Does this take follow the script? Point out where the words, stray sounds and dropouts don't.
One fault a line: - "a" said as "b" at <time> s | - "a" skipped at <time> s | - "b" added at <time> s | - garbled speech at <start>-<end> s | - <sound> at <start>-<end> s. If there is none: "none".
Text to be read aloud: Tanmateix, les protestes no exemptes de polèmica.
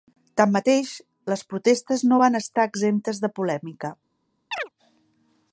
- "van estar" added at 2.2 s
- chirp at 4.5-4.7 s